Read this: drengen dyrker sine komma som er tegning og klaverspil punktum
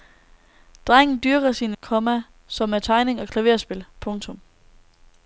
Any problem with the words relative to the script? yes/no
no